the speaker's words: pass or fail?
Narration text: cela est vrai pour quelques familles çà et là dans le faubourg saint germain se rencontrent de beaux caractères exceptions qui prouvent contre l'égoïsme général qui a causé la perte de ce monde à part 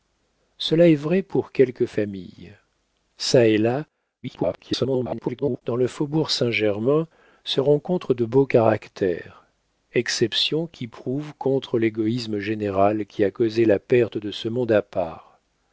fail